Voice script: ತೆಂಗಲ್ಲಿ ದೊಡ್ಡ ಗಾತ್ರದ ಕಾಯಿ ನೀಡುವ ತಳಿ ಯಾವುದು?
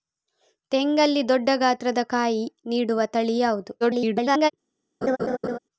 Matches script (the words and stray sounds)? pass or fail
fail